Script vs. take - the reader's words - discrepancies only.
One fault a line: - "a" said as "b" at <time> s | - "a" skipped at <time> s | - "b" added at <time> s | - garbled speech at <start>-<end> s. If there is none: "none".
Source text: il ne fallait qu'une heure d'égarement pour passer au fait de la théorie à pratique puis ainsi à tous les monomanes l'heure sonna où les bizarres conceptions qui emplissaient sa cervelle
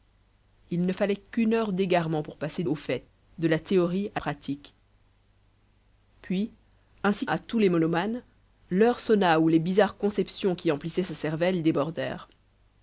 none